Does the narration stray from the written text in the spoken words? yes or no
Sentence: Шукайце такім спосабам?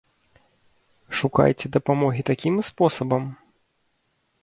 yes